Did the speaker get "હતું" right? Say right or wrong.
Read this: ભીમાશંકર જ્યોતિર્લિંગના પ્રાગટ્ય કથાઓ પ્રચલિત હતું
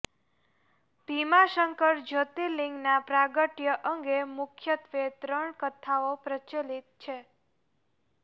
wrong